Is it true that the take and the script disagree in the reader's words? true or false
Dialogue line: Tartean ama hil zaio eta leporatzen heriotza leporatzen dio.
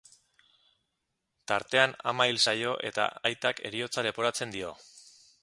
true